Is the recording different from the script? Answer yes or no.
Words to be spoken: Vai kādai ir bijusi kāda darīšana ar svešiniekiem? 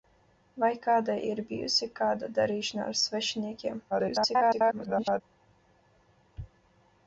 yes